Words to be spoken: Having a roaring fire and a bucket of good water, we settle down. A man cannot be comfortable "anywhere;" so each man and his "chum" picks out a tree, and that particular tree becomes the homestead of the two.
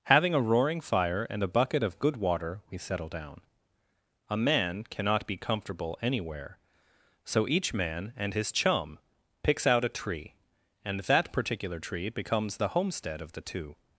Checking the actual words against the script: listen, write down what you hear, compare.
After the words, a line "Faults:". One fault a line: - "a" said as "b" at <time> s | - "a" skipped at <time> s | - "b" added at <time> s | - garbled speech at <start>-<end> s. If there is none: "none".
Having a roaring fire and a bucket of good water, we settle down. A man cannot be comfortable "anywhere;" so each man and his "chum" picks out a tree, and that particular tree becomes the homestead of the two.
Faults:
none